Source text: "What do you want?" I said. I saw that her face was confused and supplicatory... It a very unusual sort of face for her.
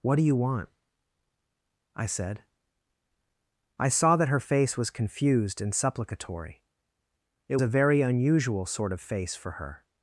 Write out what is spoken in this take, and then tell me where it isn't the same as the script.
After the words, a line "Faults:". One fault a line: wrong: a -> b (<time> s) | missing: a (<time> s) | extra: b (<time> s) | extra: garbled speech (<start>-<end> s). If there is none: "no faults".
"What do you want?" I said. I saw that her face was confused and supplicatory... It a very unusual sort of face for her.
Faults:
no faults